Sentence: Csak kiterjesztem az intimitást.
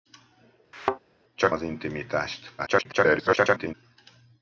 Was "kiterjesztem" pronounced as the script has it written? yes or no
no